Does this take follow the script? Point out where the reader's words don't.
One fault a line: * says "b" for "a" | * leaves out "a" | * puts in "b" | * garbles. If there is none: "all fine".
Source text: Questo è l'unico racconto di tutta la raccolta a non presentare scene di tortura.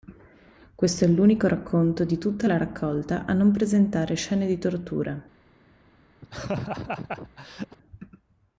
all fine